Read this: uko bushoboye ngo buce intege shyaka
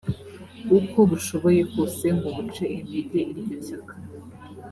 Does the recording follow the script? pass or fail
fail